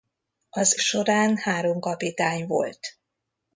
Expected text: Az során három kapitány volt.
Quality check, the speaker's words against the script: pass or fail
pass